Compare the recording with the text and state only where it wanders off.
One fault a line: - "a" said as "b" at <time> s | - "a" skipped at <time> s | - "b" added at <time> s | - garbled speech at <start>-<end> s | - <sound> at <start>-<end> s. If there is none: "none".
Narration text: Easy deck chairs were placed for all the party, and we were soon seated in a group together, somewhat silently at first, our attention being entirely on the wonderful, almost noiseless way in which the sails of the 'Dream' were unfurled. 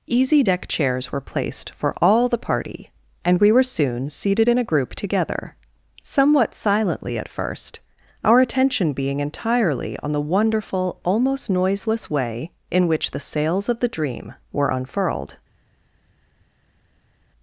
none